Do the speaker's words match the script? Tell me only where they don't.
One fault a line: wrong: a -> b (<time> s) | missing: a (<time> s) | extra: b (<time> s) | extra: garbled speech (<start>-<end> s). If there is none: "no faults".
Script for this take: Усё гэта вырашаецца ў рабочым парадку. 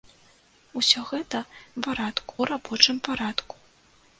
wrong: вырашаецца -> парадку (1.9 s)